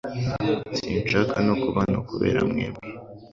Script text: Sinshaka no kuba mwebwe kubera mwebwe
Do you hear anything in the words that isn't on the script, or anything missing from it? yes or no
yes